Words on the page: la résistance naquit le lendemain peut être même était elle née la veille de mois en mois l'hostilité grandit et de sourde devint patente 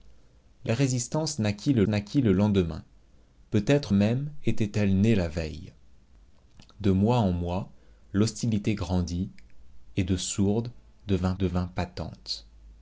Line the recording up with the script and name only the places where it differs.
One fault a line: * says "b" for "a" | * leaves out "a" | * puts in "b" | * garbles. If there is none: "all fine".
* puts in "naquit le"
* puts in "devint"